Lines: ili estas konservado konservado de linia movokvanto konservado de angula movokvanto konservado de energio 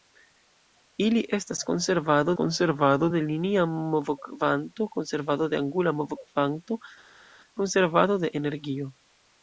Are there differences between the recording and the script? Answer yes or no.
no